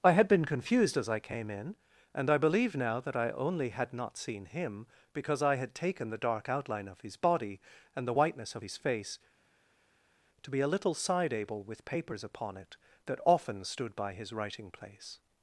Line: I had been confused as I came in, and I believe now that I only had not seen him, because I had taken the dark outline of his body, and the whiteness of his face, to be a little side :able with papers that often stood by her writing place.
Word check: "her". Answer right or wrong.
wrong